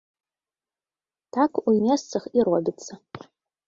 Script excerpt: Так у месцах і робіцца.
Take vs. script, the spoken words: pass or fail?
pass